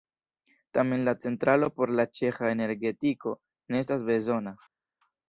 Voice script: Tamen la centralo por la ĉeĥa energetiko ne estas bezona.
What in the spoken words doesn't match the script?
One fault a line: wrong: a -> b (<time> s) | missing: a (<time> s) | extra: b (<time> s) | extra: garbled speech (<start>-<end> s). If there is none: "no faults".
no faults